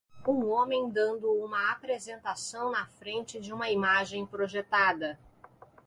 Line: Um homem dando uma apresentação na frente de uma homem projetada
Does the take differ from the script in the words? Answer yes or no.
yes